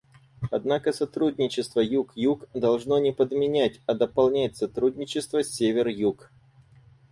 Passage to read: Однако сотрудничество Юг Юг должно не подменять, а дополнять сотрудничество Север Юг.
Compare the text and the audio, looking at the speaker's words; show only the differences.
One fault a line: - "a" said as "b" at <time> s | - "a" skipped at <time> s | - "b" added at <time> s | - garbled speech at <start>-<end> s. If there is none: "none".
none